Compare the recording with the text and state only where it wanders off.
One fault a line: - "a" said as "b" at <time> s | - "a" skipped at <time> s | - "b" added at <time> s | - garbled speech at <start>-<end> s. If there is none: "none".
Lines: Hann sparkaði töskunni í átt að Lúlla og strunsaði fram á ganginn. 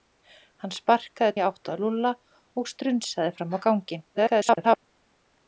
- "töskunni" skipped at 1.4 s
- garbled speech at 4.1-4.8 s